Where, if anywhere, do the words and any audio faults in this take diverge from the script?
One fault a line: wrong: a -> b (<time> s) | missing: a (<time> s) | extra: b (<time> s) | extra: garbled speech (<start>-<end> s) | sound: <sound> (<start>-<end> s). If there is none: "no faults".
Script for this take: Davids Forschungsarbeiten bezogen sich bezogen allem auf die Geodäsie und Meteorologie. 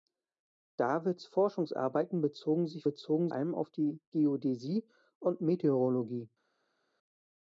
no faults